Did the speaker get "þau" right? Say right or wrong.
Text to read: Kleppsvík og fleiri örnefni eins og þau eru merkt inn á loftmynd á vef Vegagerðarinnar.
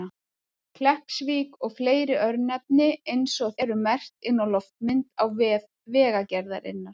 wrong